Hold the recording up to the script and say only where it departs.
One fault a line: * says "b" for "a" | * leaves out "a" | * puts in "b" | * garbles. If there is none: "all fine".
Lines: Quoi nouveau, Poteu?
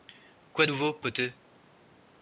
all fine